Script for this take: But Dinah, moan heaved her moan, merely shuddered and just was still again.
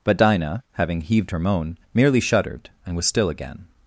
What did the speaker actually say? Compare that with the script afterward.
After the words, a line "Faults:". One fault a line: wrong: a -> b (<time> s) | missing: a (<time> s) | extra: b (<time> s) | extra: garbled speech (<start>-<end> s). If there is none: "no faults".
But Dinah, having heaved her moan, merely shuddered and was still again.
Faults:
wrong: moan -> having (0.7 s)
missing: just (3.0 s)